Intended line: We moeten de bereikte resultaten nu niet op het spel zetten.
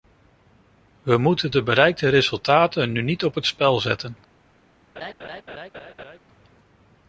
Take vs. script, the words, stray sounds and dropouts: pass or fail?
fail